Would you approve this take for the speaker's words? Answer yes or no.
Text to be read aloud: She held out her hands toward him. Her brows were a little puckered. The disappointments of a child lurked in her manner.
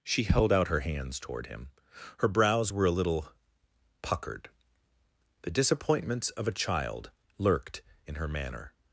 yes